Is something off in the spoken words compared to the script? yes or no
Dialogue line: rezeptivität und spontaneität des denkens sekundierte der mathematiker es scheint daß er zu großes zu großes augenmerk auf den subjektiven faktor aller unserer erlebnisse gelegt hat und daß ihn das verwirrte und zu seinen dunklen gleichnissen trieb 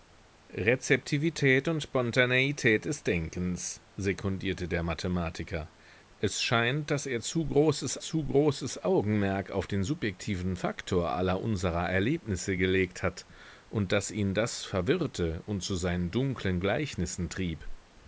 no